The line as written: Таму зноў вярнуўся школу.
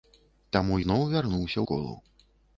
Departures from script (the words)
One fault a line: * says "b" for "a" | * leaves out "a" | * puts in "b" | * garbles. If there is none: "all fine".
all fine